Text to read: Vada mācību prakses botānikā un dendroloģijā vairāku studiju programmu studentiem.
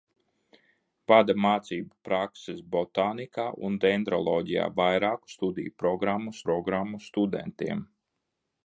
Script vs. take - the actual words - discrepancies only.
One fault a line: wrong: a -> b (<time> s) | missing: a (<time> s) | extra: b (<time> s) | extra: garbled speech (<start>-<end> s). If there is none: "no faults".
extra: programmu (6.5 s)